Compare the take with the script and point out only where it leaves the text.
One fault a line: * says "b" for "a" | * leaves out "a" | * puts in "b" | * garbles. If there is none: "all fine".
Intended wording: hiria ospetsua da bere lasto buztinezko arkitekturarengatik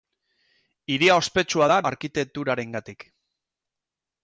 * leaves out "bere lasto buztinezko"